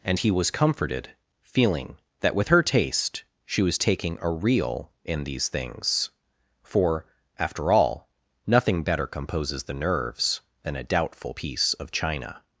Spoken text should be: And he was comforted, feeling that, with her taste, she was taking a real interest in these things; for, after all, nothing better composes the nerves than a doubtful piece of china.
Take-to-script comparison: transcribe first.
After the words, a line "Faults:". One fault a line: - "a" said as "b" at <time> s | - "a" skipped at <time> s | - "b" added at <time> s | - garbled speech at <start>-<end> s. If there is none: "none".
And he was comforted, feeling that, with her taste, she was taking a real in these things; for, after all, nothing better composes the nerves than a doubtful piece of china.
Faults:
- "interest" skipped at 4.9 s